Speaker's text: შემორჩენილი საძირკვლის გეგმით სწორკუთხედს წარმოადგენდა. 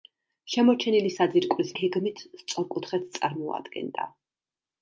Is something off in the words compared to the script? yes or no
no